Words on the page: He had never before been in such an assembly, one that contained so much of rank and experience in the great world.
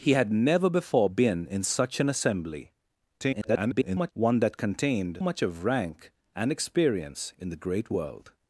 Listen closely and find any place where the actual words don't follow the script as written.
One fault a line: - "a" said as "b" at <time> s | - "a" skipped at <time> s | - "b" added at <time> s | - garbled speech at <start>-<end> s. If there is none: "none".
- garbled speech at 3.2-4.1 s
- "so" skipped at 5.2 s